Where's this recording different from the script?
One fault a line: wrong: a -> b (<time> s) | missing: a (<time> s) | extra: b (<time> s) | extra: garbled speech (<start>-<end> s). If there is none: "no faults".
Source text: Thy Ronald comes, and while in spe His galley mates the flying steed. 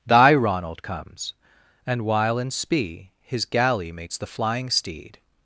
no faults